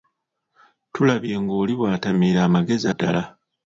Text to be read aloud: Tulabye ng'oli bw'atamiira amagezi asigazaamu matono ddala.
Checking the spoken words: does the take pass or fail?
fail